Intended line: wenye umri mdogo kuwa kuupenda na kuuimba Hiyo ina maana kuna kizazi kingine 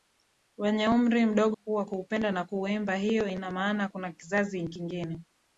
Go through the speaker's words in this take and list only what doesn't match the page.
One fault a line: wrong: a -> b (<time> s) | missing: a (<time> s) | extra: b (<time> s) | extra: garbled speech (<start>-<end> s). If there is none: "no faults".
no faults